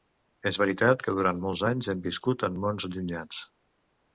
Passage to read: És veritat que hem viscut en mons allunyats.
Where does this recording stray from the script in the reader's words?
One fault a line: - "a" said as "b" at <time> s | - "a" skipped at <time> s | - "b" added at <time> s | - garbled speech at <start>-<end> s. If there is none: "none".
- "durant molts anys" added at 1.2 s